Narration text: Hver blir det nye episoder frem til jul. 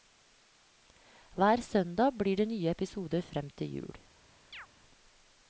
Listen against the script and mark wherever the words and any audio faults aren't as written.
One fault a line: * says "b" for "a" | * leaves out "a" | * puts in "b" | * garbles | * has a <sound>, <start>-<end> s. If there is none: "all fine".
* puts in "søndag"
* has a chirp, 4.5-4.7 s